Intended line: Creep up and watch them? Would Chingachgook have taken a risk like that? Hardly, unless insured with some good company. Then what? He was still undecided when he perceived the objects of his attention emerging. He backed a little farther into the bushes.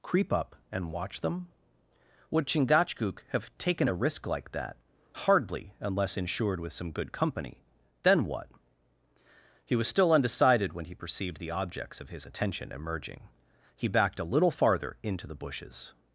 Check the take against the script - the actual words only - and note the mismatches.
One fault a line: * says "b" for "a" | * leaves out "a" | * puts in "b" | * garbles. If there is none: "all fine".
all fine